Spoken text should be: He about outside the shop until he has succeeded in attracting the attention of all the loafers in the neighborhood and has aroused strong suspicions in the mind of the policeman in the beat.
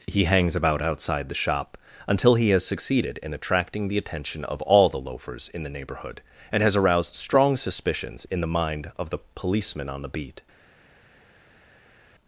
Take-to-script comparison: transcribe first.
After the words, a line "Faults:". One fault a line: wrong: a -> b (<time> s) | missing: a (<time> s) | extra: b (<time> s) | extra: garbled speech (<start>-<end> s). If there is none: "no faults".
He hangs about outside the shop until he has succeeded in attracting the attention of all the loafers in the neighborhood and has aroused strong suspicions in the mind of the policeman on the beat.
Faults:
extra: hangs (0.2 s)
wrong: in -> on (9.9 s)